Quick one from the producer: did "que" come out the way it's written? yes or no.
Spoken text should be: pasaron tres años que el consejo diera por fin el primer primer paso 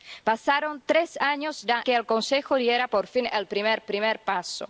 yes